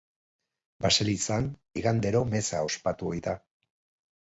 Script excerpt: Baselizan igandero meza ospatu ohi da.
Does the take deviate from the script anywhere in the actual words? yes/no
no